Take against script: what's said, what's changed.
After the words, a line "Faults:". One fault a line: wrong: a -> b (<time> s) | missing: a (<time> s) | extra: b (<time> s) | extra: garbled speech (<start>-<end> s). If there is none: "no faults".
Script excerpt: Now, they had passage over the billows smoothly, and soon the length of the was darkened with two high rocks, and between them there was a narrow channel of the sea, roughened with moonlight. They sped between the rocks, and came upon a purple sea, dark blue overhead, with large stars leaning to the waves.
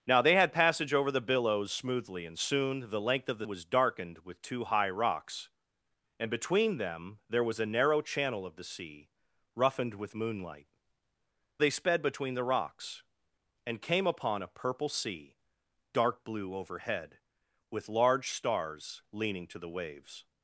Now, they had passage over the billows smoothly, and soon the length of the was darkened with two high rocks, and between them there was a narrow channel of the sea, roughened with moonlight. They sped between the rocks, and came upon a purple sea, dark blue overhead, with large stars leaning to the waves.
Faults:
no faults